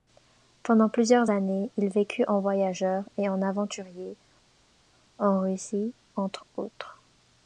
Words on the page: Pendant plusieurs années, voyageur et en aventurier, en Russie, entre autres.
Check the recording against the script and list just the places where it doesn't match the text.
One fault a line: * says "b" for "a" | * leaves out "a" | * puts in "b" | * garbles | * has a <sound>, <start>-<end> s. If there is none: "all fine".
* puts in "il vécut en"